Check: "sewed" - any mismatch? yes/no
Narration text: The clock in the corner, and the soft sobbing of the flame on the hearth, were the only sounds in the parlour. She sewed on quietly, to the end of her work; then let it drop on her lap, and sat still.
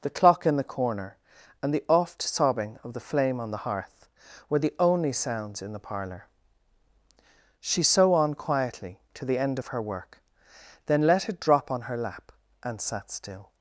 yes